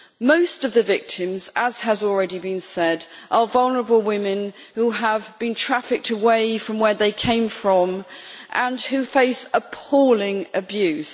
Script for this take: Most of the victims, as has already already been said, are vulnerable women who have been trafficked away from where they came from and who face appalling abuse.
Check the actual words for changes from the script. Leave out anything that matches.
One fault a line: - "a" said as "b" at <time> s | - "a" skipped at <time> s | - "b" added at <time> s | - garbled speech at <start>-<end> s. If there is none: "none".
- "already" skipped at 2.4 s